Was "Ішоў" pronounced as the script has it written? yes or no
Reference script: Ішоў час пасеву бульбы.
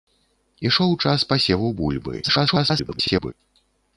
yes